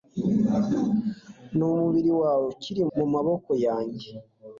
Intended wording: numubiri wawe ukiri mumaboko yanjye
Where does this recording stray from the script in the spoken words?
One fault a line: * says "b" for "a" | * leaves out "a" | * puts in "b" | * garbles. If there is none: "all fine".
all fine